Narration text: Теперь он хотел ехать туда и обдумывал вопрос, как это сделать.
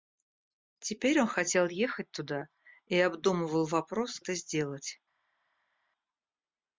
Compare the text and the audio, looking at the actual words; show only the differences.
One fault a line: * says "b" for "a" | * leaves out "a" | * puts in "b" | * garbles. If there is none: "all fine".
* leaves out "как"